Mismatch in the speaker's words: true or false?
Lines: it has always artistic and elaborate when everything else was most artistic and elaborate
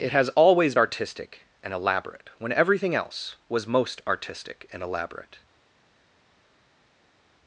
false